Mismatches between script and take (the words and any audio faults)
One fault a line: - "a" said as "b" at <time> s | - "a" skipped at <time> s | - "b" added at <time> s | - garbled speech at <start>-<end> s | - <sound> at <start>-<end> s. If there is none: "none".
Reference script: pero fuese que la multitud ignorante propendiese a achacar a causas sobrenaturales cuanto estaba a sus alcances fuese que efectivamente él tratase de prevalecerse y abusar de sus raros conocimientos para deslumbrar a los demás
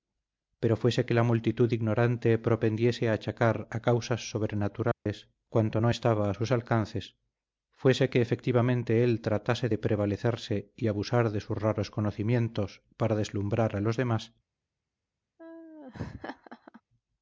- dropout at 4.9-5.1 s
- "no" added at 5.8 s
- laugh at 15.4-16.8 s